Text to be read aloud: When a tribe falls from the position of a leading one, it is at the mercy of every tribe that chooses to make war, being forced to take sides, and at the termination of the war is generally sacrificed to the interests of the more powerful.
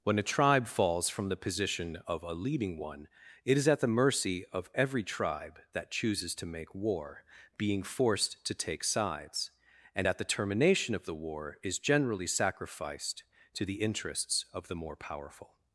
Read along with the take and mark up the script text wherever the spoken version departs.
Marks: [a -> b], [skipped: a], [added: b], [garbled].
When a tribe falls from the position of a leading one, it is at the mercy of every tribe that chooses to make war, being forced to take sides, and at the termination of the war is generally sacrificed to the interests of the more powerful.